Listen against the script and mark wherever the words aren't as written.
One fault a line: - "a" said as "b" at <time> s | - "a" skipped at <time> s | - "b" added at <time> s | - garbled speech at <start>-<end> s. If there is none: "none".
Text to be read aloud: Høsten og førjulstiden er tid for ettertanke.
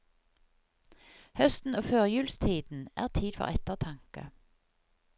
none